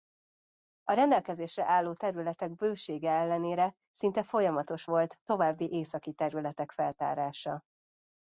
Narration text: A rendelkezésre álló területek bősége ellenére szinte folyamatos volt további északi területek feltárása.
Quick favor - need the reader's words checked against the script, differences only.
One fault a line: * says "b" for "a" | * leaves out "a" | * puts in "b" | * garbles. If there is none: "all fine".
all fine